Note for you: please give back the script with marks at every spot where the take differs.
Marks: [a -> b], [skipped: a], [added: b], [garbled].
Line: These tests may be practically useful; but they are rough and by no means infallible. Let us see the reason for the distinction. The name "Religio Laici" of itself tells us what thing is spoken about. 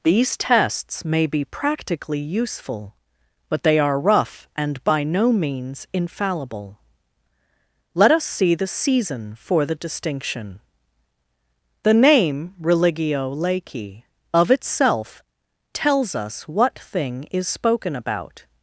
These tests may be practically useful; but they are rough and by no means infallible. Let us see the [reason -> season] for the distinction. The name "Religio Laici" of itself tells us what thing is spoken about.